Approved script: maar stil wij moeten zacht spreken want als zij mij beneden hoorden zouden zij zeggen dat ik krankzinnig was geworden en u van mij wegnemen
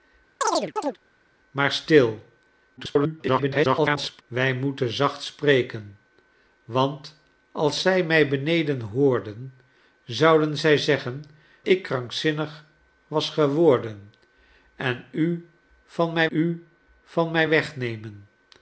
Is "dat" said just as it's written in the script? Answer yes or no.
no